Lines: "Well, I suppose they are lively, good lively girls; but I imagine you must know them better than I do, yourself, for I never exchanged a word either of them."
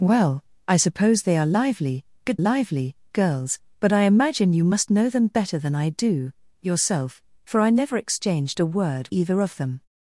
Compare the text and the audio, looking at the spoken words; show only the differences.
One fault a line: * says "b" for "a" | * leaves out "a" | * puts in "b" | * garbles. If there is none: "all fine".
all fine